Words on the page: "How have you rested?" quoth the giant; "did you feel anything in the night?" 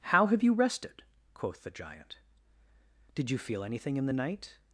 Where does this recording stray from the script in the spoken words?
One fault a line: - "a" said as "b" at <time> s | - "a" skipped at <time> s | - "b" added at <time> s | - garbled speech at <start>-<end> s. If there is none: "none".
none